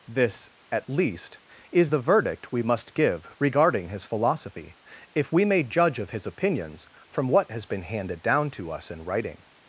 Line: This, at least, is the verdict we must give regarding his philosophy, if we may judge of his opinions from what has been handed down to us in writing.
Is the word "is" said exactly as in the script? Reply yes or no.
yes